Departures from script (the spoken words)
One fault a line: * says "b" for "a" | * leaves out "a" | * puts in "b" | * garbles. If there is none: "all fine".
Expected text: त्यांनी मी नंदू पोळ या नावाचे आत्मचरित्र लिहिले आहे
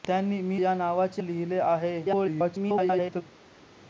* leaves out "नंदू पोळ"
* leaves out "आत्मचरित्र"
* garbles